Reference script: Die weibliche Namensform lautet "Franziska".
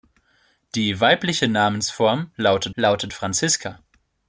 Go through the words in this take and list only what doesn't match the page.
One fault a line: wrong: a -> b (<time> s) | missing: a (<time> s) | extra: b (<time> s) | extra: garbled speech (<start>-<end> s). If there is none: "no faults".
extra: lautet (2.7 s)